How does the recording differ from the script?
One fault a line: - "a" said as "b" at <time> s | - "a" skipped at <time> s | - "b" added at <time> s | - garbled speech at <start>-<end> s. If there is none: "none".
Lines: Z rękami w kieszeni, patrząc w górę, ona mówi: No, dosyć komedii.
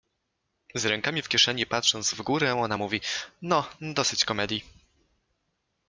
none